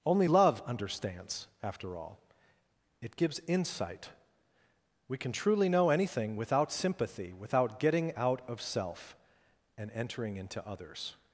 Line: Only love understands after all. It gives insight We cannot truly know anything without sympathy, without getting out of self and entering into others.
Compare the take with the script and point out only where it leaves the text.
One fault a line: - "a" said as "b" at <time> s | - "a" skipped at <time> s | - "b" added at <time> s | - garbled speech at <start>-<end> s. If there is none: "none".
- "cannot" said as "can" at 5.2 s